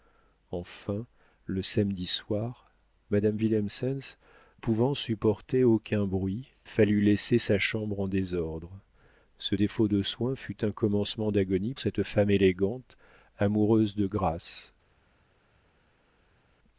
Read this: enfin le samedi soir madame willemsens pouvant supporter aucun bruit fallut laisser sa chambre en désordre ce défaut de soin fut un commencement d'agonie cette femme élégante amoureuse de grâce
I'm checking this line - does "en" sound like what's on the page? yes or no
yes